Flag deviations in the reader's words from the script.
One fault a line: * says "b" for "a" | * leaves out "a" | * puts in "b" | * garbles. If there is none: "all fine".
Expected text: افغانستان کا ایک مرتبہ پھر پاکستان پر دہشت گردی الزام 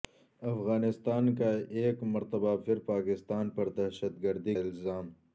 all fine